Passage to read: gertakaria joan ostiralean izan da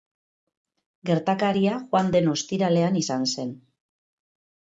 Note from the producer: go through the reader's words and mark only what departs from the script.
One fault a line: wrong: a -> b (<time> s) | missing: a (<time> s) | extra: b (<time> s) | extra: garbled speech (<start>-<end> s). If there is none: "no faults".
extra: den (2.1 s)
wrong: da -> zen (3.3 s)